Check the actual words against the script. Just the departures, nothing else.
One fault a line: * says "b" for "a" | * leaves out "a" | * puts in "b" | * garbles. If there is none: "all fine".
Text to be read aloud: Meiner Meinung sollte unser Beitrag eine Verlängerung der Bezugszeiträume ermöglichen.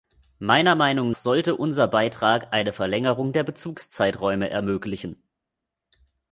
all fine